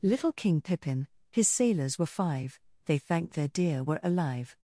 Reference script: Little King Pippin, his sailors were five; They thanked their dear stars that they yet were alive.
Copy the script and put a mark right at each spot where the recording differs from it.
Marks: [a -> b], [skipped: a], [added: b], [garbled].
Little King Pippin, his sailors were five; They thanked their dear [skipped: stars that they yet] were alive.